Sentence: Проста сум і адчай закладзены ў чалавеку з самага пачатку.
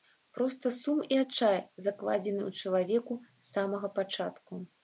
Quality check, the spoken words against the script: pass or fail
pass